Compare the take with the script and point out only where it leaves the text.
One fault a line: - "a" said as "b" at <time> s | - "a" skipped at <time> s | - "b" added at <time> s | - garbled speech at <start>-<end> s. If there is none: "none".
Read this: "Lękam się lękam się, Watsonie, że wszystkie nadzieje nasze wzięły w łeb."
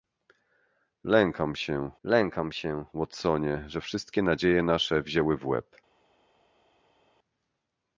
none